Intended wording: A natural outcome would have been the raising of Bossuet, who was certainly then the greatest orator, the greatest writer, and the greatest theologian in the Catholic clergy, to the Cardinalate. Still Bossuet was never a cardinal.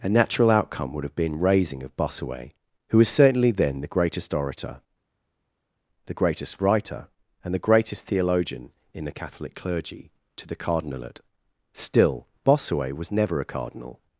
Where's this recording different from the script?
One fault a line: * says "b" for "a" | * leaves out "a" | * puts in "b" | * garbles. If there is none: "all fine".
* leaves out "the"